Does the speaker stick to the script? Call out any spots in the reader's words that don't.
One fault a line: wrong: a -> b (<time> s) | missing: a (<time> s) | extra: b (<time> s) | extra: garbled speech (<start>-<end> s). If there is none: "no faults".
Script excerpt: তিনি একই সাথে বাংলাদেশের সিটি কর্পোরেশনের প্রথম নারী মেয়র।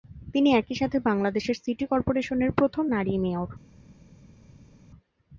no faults